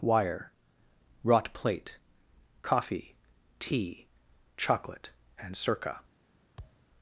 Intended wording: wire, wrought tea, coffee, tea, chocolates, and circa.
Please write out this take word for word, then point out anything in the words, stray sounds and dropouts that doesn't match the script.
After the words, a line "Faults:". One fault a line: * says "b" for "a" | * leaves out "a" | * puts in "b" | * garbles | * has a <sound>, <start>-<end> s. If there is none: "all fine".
wire, wrought plate, coffee, tea, chocolate, and circa.
Faults:
* says "plate" for "tea"
* says "chocolate" for "chocolates"
* has a thud, 6.6-6.9 s